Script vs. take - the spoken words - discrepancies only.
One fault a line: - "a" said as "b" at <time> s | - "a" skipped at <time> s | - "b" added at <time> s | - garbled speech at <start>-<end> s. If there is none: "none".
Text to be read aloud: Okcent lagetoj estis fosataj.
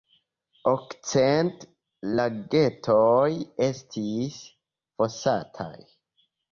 none